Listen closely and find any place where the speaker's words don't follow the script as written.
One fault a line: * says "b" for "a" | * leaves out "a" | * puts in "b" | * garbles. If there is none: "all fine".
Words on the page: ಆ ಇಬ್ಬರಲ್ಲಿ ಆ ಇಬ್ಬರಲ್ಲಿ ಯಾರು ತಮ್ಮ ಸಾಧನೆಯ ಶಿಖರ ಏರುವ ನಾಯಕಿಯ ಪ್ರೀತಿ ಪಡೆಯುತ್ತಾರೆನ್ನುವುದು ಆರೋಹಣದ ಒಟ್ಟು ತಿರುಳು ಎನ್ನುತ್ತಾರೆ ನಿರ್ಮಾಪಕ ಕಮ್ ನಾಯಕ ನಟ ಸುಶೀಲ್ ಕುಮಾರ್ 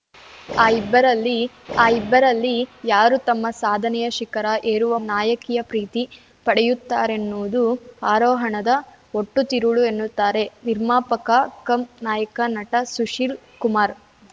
all fine